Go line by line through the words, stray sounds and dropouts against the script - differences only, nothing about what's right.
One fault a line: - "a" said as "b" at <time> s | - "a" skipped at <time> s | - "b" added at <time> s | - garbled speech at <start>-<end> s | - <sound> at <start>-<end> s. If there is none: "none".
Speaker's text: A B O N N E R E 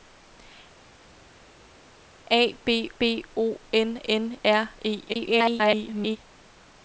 - "B" added at 3.0 s
- "E" skipped at 4.4 s
- garbled speech at 5.1-6.2 s